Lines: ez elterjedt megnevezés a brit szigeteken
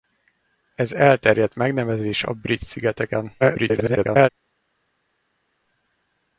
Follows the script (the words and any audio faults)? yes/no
no